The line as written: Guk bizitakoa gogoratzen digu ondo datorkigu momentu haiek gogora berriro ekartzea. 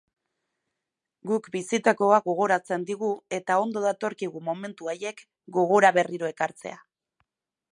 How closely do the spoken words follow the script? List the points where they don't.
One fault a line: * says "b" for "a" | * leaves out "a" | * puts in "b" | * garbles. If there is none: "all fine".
* puts in "eta"